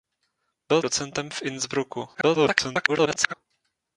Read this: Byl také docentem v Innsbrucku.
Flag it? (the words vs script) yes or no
yes